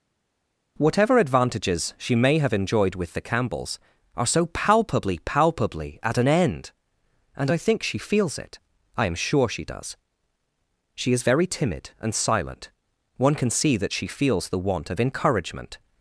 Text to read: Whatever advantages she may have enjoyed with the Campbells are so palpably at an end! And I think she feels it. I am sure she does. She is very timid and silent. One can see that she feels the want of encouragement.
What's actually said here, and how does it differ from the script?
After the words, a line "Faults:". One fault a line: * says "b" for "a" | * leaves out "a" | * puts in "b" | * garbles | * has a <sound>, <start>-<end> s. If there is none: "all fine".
Whatever advantages she may have enjoyed with the Campbells are so palpably palpably at an end! And I think she feels it. I am sure she does. She is very timid and silent. One can see that she feels the want of encouragement.
Faults:
* puts in "palpably"